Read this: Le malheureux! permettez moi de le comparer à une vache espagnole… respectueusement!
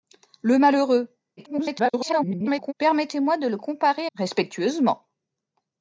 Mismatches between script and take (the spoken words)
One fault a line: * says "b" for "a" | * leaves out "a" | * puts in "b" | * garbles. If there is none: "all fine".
* garbles
* leaves out "une vache espagnole"